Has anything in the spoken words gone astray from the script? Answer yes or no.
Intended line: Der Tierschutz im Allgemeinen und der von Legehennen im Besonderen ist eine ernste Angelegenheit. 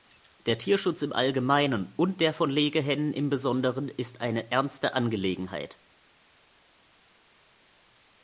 no